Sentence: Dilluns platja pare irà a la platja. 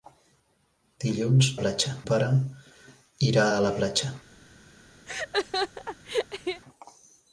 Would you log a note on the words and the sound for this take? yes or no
yes